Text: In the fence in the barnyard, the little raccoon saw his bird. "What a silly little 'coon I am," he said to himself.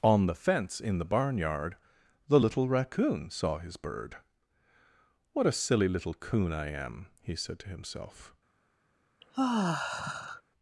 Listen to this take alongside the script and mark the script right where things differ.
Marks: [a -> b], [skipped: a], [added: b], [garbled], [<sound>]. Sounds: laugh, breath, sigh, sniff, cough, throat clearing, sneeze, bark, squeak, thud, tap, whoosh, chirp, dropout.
[In -> On] the fence in the barnyard, the little raccoon saw his bird. "What a silly little 'coon I am," he said to himself. [sigh]